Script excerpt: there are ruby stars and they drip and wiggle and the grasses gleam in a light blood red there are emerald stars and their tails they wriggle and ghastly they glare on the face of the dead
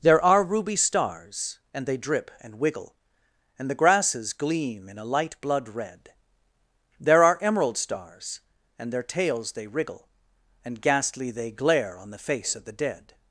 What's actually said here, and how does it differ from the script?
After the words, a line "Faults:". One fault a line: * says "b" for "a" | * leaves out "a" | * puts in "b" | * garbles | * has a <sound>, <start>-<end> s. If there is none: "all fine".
there are ruby stars and they drip and wiggle and the grasses gleam in a light blood red there are emerald stars and their tails they wriggle and ghastly they glare on the face of the dead
Faults:
all fine